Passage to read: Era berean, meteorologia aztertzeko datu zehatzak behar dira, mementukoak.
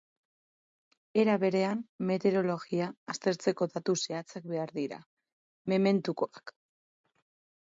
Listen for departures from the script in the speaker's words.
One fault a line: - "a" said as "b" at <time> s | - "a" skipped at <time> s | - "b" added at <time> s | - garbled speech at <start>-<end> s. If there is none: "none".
none